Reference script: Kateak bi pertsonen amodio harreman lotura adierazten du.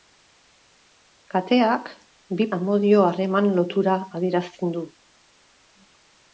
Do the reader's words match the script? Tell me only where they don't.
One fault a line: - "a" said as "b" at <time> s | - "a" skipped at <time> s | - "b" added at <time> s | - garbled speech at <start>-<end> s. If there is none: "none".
- "pertsonen" skipped at 2.5 s